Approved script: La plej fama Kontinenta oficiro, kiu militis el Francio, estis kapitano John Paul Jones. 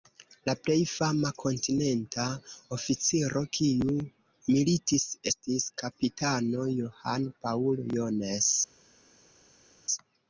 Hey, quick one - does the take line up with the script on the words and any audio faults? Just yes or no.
no